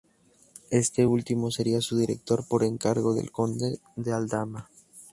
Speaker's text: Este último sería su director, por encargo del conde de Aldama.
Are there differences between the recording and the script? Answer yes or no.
no